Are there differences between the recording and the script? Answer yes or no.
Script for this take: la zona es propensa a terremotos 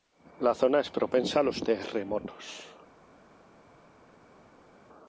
yes